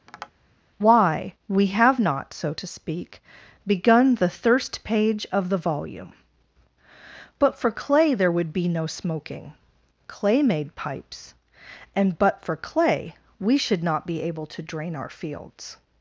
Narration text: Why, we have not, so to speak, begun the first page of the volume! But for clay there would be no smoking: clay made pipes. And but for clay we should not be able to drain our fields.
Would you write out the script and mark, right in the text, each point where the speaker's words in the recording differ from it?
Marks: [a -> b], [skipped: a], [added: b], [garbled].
Why, we have not, so to speak, begun the [first -> thirst] page of the volume! But for clay there would be no smoking: clay made pipes. And but for clay we should not be able to drain our fields.